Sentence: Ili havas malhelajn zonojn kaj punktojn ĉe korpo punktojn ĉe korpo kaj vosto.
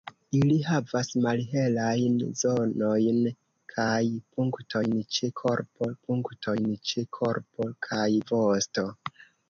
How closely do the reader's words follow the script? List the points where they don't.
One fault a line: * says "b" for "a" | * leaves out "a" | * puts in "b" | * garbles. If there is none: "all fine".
all fine